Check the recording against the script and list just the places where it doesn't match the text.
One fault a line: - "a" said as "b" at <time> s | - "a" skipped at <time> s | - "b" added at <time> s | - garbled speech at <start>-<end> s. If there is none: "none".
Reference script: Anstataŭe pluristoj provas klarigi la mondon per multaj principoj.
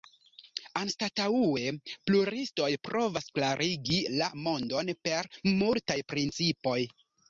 none